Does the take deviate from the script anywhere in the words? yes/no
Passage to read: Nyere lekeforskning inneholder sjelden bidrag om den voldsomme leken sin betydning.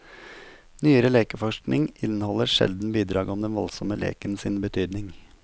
no